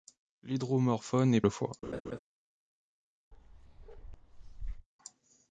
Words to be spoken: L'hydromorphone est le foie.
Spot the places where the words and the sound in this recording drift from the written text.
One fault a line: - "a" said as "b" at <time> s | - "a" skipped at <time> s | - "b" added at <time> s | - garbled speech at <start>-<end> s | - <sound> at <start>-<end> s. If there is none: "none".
- laugh at 1.8-2.2 s
- bark at 3.3-4.9 s